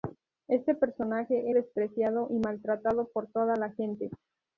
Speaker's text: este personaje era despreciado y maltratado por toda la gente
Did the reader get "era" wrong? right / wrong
wrong